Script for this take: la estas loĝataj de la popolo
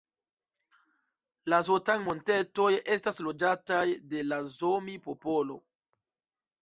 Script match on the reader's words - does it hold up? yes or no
no